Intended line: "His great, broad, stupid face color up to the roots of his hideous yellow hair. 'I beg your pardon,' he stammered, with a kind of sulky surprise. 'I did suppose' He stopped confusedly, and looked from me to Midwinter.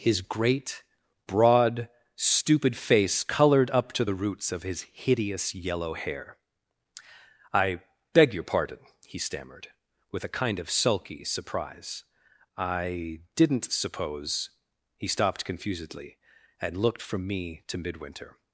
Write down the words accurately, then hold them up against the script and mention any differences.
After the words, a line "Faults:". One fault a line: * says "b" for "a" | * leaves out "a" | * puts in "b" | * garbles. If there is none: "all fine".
"His great, broad, stupid face colored up to the roots of his hideous yellow hair. 'I beg your pardon,' he stammered, with a kind of sulky surprise. 'I didn't suppose' He stopped confusedly, and looked from me to Midwinter.
Faults:
* says "colored" for "color"
* says "didn't" for "did"